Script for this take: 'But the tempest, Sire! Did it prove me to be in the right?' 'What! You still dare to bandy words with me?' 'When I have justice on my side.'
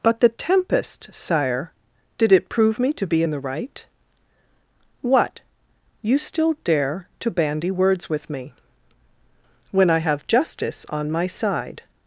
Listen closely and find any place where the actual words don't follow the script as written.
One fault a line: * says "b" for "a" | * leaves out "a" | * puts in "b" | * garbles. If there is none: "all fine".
all fine